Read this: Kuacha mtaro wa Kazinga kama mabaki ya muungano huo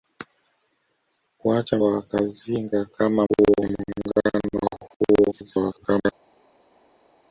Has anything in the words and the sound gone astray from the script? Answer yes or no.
yes